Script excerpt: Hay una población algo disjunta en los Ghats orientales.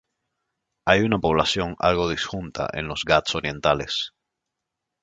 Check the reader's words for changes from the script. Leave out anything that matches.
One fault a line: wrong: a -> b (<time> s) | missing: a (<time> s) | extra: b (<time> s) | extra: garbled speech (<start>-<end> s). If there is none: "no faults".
no faults